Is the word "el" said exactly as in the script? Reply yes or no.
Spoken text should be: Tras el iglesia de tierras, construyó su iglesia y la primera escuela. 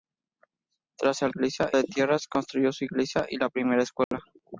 yes